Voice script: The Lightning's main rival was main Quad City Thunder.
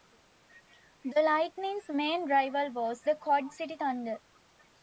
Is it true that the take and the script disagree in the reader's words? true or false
true